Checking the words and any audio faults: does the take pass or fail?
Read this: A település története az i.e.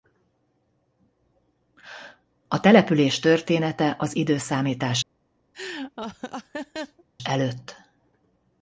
fail